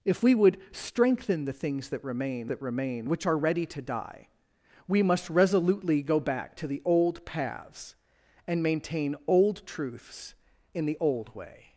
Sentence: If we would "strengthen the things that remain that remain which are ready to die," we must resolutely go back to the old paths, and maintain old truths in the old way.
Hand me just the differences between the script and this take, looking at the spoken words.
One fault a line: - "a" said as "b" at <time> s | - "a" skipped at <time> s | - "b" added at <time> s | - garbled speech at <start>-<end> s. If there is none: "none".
none